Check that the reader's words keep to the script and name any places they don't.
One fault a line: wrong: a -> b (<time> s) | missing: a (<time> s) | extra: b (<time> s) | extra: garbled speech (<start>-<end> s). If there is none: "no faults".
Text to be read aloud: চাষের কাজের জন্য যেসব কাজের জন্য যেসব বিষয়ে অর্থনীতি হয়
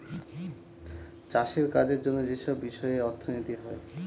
missing: কাজের জন্য যেসব (2.5 s)